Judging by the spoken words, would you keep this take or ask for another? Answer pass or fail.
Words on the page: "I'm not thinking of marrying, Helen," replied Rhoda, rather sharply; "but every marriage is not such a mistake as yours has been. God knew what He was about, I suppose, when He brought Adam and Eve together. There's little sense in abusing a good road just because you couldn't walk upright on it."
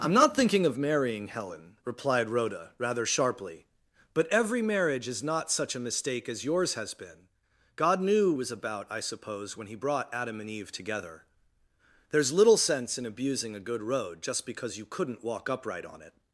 fail